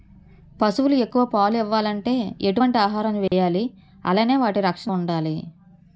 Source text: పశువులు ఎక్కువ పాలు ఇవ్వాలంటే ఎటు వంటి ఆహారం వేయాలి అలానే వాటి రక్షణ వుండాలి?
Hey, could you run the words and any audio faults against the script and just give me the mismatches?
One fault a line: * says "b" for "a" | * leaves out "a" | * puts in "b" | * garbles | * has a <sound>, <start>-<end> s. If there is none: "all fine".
* has a dropout, 3.3-3.3 s